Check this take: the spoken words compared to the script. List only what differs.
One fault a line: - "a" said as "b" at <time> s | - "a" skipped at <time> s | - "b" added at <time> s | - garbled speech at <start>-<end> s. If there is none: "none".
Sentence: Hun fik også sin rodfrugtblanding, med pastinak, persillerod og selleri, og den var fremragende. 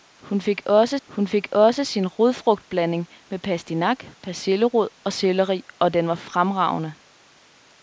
- "hun fik også" added at 1.1 s